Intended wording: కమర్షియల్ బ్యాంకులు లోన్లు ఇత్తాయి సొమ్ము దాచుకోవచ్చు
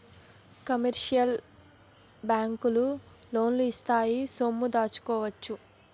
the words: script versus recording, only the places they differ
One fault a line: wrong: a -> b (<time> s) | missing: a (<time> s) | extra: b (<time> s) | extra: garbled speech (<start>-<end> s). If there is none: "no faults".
no faults